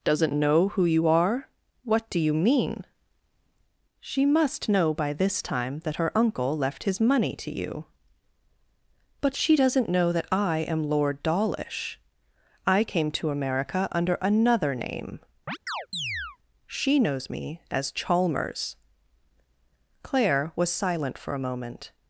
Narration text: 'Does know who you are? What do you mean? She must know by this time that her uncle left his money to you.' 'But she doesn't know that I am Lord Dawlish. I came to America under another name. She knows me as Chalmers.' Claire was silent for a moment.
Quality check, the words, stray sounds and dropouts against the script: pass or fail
fail